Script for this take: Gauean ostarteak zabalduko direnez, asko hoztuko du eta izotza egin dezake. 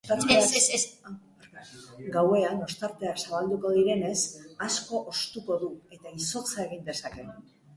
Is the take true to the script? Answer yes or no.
yes